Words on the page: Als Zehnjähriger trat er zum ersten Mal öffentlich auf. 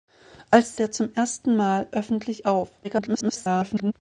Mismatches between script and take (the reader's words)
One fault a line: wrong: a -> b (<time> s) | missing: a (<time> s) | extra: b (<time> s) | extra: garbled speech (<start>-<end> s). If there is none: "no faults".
missing: Zehnjähriger trat (0.8 s)
extra: garbled speech (2.8-3.9 s)